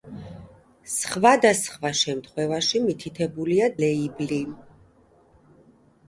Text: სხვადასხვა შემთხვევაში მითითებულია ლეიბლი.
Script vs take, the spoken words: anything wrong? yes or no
no